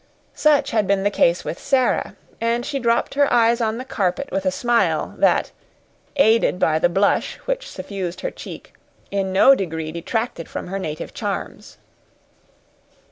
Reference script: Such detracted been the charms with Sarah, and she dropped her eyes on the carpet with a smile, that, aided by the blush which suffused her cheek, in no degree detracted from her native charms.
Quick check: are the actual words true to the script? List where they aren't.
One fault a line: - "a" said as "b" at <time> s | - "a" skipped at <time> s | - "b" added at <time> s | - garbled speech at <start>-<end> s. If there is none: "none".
- "detracted" said as "had" at 0.7 s
- "charms" said as "case" at 1.1 s